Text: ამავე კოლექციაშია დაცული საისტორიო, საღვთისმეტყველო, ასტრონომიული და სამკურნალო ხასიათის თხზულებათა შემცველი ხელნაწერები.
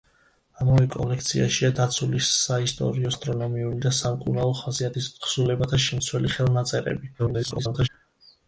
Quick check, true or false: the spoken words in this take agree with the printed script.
false